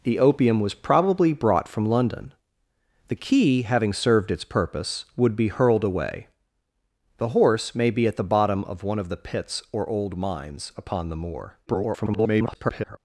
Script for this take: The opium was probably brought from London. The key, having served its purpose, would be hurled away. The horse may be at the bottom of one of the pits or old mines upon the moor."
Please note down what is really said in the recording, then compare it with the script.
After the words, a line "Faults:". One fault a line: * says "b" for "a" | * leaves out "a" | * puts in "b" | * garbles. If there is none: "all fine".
The opium was probably brought from London. The key, having served its purpose, would be hurled away. The horse may be at the bottom of one of the pits or old mines upon the moor." [garbled]
Faults:
* garbles